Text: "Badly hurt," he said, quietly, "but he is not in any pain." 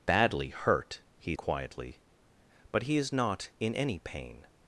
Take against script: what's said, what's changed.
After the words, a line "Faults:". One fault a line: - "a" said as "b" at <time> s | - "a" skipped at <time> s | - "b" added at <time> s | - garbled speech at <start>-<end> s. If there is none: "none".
"Badly hurt," he quietly, "but he is not in any pain."
Faults:
- "said" skipped at 1.4 s